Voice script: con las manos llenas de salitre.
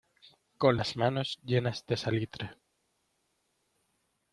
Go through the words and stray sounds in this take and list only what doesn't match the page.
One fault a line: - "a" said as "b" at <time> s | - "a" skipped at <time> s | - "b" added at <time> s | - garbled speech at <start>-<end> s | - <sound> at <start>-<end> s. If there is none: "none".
none